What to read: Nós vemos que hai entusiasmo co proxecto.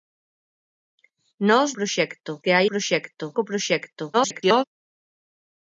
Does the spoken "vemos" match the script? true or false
false